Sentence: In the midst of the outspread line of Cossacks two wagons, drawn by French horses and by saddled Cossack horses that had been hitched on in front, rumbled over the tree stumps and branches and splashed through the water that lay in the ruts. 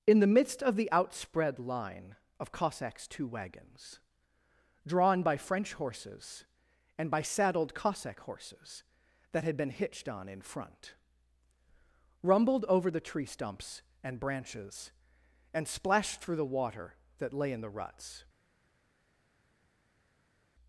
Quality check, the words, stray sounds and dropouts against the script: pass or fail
pass